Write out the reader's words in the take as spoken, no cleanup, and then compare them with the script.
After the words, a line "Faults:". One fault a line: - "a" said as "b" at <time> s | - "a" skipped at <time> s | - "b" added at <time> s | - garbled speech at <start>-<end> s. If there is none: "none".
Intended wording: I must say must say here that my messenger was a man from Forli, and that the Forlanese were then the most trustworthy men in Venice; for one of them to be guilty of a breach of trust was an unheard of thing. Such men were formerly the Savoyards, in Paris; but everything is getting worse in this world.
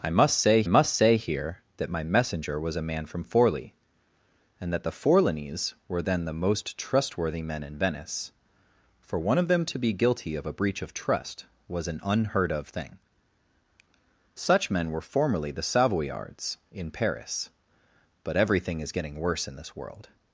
I must say must say here that my messenger was a man from Forli, and that the Forlanese were then the most trustworthy men in Venice; for one of them to be guilty of a breach of trust was an unheard of thing. Such men were formerly the Savoyards, in Paris; but everything is getting worse in this world.
Faults:
none